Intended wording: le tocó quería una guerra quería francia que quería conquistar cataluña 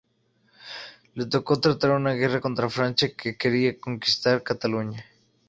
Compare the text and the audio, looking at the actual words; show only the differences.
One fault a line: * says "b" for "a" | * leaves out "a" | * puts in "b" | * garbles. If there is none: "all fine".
* says "tratar" for "quería"
* says "contra" for "quería"